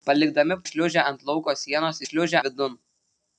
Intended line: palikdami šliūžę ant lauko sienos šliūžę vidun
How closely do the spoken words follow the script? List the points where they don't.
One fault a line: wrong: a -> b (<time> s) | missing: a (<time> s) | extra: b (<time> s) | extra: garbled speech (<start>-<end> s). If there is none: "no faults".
no faults